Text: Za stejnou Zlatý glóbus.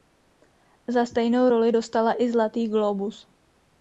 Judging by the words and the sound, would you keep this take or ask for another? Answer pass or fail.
fail